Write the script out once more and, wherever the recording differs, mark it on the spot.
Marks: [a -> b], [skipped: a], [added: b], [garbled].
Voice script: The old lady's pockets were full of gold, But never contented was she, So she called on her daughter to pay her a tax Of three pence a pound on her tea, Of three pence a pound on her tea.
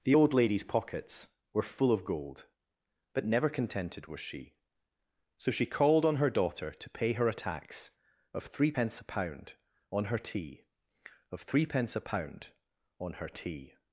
The old lady's pockets were full of gold, But never contented was she, So she called on her daughter to pay her a tax Of three pence a pound on her tea, Of three pence a pound on her tea.